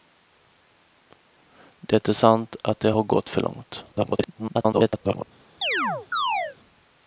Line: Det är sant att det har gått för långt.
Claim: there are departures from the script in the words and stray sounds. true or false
true